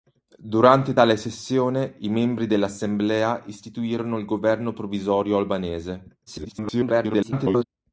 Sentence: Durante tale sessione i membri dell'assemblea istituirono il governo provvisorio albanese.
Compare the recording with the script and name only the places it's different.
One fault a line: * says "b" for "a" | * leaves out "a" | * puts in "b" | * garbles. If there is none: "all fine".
* garbles